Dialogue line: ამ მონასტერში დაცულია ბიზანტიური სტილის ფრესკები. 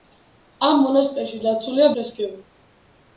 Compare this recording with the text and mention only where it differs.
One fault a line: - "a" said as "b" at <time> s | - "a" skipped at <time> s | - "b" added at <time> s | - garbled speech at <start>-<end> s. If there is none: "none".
- "ბიზანტიური სტილის" skipped at 1.9 s